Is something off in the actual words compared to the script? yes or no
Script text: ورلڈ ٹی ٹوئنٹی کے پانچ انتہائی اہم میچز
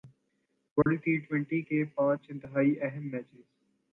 no